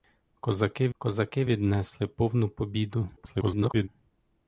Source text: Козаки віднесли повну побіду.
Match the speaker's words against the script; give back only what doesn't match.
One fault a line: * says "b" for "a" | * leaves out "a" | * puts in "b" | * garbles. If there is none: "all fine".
* puts in "козаки"
* garbles